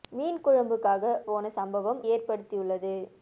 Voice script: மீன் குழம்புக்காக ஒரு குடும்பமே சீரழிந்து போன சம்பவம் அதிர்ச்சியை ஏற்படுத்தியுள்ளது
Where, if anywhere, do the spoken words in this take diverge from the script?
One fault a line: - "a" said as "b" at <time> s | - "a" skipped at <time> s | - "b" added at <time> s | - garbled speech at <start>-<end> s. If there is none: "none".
- "ஒரு குடும்பமே சீரழிந்து" skipped at 1.0 s
- "அதிர்ச்சியை" skipped at 2.0 s